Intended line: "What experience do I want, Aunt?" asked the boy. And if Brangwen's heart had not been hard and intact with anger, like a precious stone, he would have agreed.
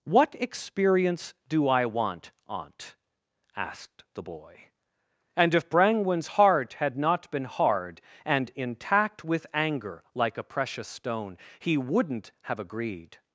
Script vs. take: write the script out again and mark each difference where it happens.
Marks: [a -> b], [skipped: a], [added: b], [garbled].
"What experience do I want, Aunt?" asked the boy. And if Brangwen's heart had not been hard and intact with anger, like a precious stone, he [would -> wouldn't] have agreed.